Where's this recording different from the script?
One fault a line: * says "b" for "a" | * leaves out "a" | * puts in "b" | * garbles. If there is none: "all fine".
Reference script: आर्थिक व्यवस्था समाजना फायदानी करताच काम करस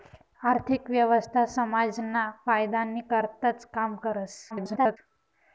* garbles